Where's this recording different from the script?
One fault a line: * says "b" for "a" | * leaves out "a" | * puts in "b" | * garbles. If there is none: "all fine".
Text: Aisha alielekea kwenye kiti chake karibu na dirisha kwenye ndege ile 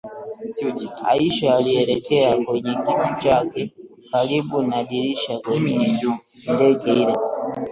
all fine